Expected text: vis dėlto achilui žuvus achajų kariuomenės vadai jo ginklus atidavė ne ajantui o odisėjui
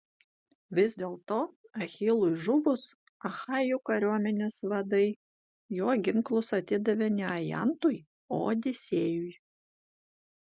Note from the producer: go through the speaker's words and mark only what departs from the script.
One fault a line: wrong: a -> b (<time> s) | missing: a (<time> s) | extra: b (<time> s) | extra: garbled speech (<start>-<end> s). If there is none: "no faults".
no faults